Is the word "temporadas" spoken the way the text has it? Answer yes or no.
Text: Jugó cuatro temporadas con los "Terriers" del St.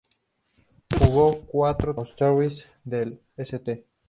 no